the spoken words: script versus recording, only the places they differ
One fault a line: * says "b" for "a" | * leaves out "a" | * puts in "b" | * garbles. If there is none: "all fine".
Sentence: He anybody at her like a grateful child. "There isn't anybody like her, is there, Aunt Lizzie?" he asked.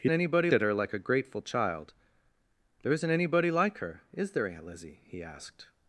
all fine